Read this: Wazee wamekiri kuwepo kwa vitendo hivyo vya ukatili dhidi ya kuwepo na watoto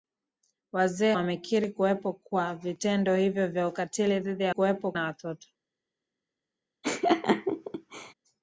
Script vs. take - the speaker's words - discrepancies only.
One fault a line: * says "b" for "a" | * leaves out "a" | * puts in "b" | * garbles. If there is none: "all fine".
all fine